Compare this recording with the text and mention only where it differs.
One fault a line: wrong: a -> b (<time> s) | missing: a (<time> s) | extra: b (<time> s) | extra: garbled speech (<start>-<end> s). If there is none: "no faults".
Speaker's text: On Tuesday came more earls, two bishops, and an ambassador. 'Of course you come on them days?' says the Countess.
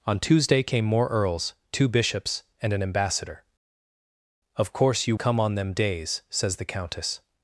no faults